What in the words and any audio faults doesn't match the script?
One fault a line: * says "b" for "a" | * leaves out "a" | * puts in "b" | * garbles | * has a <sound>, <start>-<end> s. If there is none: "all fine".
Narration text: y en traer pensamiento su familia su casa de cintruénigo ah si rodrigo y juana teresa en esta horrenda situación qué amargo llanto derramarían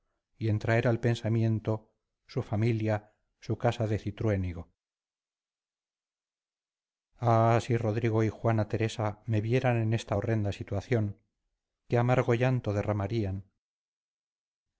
* puts in "al"
* puts in "me vieran"